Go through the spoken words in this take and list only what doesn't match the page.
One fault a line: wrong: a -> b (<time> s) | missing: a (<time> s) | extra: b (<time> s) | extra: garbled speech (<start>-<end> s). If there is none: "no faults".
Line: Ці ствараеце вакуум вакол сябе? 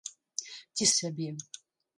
missing: ствараеце вакуум вакол (0.9 s)